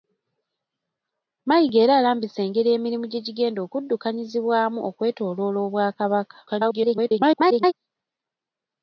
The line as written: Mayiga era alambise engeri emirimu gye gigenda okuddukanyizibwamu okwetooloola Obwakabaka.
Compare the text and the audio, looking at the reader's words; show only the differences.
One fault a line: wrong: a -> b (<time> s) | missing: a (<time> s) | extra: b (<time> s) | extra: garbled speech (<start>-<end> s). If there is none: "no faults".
extra: garbled speech (6.5-7.7 s)